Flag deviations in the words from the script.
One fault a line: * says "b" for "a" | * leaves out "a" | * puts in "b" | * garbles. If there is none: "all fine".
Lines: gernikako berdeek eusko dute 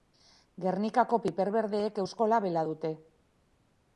* puts in "piper"
* puts in "labela"